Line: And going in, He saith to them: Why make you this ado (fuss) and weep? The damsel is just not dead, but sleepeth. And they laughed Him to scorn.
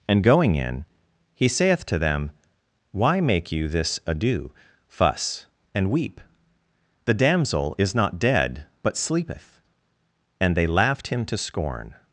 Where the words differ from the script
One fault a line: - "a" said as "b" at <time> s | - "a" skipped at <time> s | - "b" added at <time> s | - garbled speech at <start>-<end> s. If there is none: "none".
- "just" skipped at 7.9 s